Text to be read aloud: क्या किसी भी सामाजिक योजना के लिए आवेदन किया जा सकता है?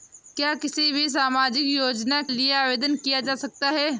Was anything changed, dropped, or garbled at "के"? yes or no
yes